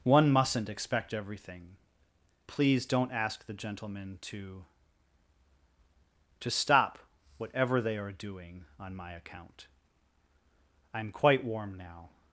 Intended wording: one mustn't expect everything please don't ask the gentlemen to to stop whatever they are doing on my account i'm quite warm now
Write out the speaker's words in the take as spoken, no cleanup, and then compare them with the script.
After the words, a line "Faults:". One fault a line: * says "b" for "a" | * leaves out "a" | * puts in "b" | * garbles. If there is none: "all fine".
one mustn't expect everything please don't ask the gentlemen to to stop whatever they are doing on my account i'm quite warm now
Faults:
all fine